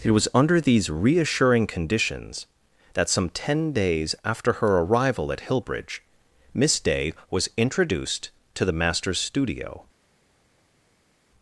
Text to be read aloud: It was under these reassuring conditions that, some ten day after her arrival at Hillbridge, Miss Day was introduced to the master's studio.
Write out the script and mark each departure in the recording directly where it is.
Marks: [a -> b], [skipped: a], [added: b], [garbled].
It was under these reassuring conditions that, some ten [day -> days] after her arrival at Hillbridge, Miss Day was introduced to the master's studio.